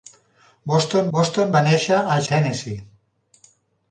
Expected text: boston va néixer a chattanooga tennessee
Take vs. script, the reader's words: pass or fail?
fail